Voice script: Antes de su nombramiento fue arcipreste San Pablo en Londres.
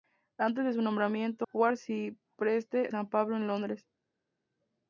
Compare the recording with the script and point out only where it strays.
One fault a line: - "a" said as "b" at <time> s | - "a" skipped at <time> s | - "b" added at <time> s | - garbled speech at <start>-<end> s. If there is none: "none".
none